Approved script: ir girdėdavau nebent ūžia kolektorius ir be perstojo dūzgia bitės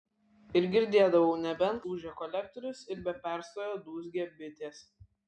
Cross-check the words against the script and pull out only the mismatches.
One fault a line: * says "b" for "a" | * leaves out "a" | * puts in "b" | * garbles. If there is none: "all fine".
all fine